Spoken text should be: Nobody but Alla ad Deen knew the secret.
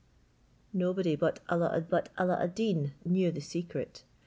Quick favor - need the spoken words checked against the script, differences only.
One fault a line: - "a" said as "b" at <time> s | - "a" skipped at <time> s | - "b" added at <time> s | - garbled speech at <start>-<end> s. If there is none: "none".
- "but Alla ad" added at 1.9 s